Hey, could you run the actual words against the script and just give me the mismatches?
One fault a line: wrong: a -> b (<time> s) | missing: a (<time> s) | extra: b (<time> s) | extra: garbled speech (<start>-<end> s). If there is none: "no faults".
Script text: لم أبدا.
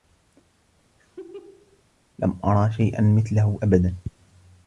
extra: أرى شيئا مثله (2.4 s)